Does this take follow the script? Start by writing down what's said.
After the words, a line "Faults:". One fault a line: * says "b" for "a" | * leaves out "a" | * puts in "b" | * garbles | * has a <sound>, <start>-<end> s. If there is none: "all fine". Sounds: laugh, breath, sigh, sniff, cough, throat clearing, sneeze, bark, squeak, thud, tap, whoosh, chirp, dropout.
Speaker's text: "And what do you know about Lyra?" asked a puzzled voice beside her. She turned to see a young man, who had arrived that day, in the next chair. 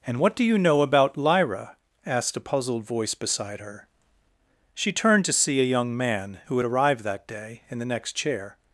"And what do you know about Lyra?" asked a puzzled voice beside her. She turned to see a young man, who had arrived that day, in the next chair.
Faults:
all fine